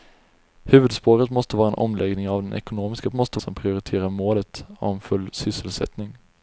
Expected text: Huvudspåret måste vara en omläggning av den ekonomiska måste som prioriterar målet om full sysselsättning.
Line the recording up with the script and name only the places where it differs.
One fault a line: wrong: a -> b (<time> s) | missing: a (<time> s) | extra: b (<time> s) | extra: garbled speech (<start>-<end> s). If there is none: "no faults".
no faults